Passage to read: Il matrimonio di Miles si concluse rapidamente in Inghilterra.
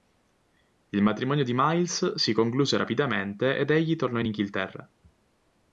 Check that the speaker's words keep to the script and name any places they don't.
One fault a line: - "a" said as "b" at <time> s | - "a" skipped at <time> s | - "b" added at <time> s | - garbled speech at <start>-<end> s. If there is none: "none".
- "ed egli tornò" added at 3.5 s